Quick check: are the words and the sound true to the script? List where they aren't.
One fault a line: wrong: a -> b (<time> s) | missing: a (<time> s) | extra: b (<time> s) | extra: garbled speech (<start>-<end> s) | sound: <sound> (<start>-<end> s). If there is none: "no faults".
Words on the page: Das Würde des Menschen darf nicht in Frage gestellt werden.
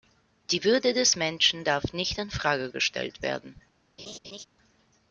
wrong: Das -> Die (0.5 s)
sound: laugh (4.0-4.5 s)